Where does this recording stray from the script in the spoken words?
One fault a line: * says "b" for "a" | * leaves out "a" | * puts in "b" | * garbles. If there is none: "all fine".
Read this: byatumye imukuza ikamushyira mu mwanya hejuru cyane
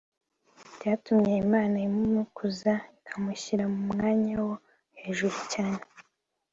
* puts in "imana"
* puts in "wo"